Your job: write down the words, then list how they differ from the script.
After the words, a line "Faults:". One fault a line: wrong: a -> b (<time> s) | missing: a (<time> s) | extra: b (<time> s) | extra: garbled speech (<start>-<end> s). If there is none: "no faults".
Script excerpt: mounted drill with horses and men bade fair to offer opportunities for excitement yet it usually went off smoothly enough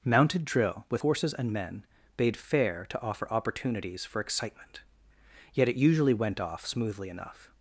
mounted drill with horses and men bade fair to offer opportunities for excitement yet it usually went off smoothly enough
Faults:
no faults